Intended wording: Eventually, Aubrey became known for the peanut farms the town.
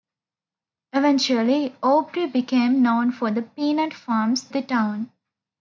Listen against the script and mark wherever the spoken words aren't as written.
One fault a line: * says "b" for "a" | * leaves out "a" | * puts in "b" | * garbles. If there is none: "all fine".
all fine